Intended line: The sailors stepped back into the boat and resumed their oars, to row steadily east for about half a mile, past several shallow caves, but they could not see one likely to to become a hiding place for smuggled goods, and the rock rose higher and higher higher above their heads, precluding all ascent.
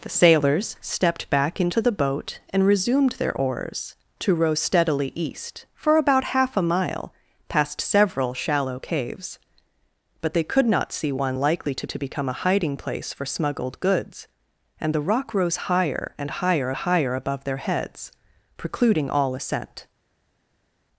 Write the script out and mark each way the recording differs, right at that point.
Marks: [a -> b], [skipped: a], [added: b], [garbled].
The sailors stepped back into the boat and resumed their oars, to row steadily east for about half a mile, past several shallow caves, but they could not see one likely to to become a hiding place for smuggled goods, and the rock rose higher and higher higher above their heads, precluding all ascent.